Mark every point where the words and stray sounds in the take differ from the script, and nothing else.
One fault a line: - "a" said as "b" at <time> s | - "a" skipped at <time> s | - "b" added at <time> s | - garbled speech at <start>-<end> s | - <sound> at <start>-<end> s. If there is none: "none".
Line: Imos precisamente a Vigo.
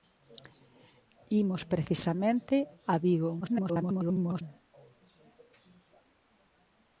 - garbled speech at 3.4-4.4 s